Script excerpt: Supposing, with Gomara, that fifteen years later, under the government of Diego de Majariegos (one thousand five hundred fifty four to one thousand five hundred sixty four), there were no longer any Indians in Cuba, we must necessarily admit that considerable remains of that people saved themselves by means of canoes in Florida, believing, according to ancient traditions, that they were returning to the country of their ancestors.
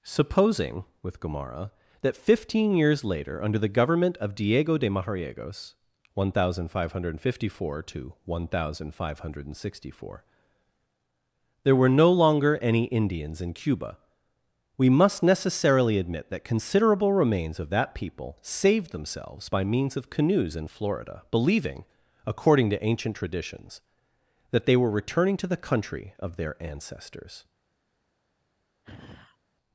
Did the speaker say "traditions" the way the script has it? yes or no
yes